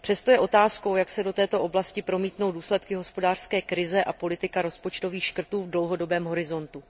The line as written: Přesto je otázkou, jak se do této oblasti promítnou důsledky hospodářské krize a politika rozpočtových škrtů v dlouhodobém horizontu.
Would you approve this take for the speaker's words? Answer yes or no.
yes